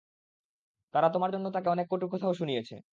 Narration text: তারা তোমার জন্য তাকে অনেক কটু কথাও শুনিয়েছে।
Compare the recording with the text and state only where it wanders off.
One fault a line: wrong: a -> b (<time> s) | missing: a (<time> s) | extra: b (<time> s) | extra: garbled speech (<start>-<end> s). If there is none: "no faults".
no faults